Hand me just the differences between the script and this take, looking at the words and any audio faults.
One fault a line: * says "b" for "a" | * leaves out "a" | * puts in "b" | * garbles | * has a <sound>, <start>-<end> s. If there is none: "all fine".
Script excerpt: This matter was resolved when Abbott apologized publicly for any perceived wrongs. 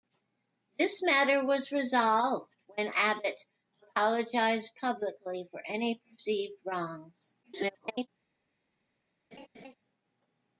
* garbles
* has a laugh, 9.3-9.7 s